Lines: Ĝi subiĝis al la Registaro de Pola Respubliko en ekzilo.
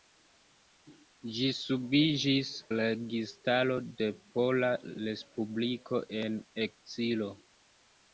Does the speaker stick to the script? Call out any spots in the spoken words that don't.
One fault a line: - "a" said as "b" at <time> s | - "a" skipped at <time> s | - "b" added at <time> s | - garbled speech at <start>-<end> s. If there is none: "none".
- "al" skipped at 2.5 s